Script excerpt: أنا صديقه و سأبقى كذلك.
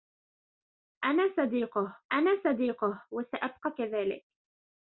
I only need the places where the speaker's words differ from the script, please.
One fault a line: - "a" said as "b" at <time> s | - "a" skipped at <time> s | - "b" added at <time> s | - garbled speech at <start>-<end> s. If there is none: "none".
- "أنا صديقه" added at 2.1 s